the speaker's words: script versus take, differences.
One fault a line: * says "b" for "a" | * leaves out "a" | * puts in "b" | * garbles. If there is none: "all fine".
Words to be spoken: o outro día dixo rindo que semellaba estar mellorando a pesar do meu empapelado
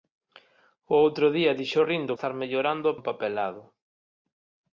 * leaves out "que semellaba"
* leaves out "pesar do meu"